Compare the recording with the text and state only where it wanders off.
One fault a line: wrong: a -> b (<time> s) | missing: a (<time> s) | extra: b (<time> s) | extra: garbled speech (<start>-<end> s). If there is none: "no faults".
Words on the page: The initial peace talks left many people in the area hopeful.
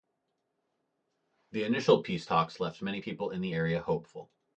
no faults